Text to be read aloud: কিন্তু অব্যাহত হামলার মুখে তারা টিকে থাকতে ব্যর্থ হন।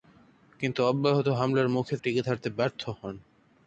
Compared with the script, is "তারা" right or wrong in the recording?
wrong